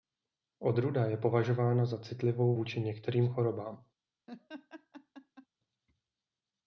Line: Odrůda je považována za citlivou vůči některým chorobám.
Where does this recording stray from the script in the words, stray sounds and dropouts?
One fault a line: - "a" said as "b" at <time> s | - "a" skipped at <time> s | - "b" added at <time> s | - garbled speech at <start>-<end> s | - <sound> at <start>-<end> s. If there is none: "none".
- laugh at 4.3-5.5 s